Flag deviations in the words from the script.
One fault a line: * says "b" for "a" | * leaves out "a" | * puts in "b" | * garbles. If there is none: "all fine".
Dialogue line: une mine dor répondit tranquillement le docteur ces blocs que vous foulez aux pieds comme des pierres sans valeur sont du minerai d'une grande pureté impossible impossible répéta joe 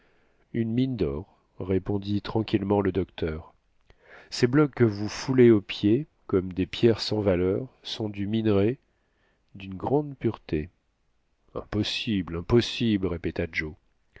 all fine